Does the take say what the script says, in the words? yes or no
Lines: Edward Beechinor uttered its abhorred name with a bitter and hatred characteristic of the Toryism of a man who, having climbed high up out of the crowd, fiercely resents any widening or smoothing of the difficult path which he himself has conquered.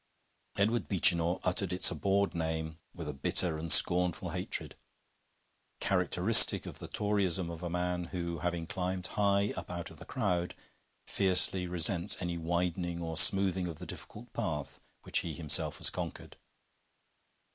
no